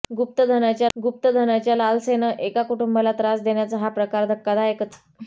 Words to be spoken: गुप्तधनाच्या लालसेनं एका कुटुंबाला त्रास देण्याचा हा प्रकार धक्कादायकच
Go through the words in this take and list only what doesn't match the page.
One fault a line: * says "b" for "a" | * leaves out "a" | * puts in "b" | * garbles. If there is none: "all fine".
* puts in "गुप्तधनाच्या"